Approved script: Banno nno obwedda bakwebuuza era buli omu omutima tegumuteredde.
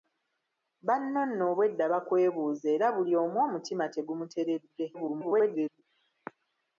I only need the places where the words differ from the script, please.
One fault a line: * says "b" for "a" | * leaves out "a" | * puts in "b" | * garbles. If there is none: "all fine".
* garbles